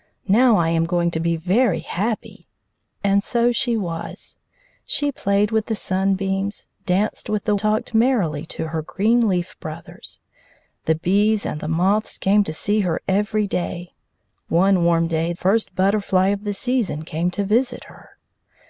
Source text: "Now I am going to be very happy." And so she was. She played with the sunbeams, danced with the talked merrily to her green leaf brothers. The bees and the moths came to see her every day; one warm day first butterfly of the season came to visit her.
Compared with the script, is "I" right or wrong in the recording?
right